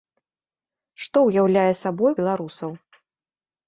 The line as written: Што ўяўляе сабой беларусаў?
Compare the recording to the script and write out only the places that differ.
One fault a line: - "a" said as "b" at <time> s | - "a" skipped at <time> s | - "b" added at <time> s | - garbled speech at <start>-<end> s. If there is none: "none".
none